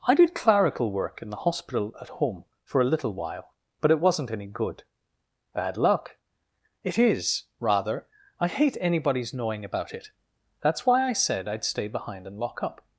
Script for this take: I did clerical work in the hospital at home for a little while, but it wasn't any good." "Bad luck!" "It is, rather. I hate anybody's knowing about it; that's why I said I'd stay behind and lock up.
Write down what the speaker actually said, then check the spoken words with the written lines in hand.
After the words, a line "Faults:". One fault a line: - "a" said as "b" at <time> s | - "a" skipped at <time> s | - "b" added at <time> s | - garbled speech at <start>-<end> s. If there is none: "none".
I did clerical work in the hospital at home for a little while, but it wasn't any good." "Bad luck!" "It is, rather. I hate anybody's knowing about it; that's why I said I'd stay behind and lock up.
Faults:
none